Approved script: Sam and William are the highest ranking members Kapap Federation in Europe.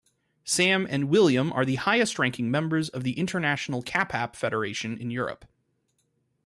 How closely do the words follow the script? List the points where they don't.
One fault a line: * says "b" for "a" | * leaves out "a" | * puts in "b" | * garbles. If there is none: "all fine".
* puts in "of the International"